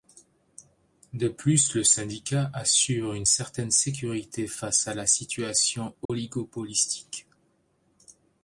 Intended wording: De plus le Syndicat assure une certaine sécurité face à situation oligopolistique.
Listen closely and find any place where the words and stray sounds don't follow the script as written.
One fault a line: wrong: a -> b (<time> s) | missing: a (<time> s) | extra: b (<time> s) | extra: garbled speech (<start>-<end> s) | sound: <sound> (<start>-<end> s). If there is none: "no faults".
extra: la (4.9 s)
sound: dropout (6.1-6.1 s)